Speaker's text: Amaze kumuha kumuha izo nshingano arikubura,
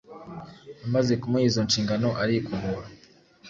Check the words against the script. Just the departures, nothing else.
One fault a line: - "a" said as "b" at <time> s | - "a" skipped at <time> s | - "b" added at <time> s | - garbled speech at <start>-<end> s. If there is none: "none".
- "kumuha" skipped at 1.4 s